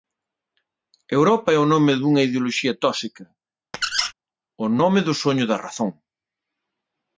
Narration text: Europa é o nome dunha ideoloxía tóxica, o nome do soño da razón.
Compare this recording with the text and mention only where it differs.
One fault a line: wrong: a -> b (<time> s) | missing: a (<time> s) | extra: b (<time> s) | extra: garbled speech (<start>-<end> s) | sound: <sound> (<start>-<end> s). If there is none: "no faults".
sound: squeak (3.7-4.1 s)